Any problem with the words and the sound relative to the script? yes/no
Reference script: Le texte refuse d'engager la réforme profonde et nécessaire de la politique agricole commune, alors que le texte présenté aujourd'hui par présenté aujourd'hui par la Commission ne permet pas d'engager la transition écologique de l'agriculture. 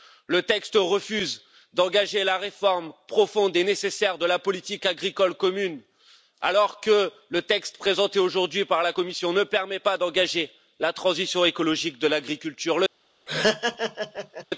yes